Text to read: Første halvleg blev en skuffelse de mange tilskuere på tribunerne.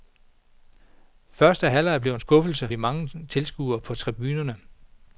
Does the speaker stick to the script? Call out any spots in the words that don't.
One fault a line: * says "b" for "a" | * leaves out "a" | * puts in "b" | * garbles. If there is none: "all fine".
all fine